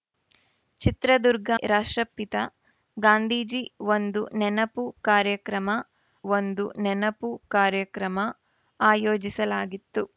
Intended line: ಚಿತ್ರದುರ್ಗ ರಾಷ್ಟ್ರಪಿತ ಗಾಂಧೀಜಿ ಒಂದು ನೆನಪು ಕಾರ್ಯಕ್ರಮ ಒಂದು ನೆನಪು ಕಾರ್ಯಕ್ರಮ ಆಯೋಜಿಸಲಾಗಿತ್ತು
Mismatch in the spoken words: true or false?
false